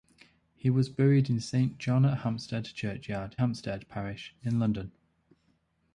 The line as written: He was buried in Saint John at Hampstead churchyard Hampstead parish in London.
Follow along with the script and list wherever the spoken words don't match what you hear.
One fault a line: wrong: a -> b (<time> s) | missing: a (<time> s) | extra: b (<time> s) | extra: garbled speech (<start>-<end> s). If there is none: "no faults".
no faults